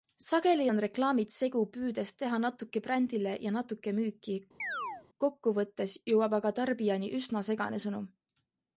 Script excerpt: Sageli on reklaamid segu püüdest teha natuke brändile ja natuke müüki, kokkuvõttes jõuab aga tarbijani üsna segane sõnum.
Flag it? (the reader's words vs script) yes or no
no